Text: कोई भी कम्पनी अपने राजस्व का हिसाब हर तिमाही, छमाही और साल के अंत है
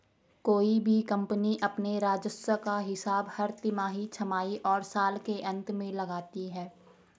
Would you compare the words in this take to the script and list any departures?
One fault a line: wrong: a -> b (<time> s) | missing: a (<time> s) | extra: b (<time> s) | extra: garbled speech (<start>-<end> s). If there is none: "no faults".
extra: में लगाती (5.7 s)